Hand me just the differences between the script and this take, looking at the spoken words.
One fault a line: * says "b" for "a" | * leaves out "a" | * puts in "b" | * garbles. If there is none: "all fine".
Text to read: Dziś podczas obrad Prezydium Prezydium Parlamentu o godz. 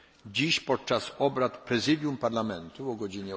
* leaves out "Prezydium"